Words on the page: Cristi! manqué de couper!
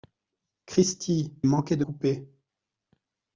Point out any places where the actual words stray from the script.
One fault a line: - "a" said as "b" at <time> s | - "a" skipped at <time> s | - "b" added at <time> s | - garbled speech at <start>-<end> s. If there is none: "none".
none